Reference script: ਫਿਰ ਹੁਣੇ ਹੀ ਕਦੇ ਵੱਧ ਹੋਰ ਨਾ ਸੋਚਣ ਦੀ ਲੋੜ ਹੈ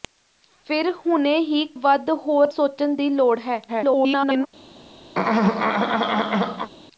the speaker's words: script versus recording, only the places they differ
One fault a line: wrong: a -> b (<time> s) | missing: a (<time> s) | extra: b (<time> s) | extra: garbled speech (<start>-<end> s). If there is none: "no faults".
missing: ਕਦੇ (1.6 s)
missing: ਨਾ (2.5 s)
extra: garbled speech (3.7-4.5 s)